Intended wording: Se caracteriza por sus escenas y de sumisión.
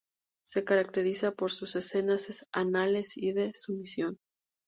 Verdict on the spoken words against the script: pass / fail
fail